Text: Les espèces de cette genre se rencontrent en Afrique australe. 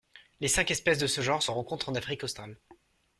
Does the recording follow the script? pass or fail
fail